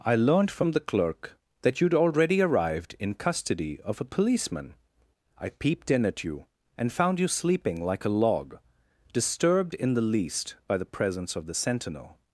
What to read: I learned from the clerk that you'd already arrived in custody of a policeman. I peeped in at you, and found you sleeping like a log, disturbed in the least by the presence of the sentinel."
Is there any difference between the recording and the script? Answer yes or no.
no